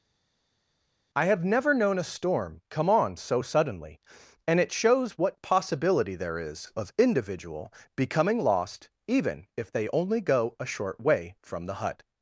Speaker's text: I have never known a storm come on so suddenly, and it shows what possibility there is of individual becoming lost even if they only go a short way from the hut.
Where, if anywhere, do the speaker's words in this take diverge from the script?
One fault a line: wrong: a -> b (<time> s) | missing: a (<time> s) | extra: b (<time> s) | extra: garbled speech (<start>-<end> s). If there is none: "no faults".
no faults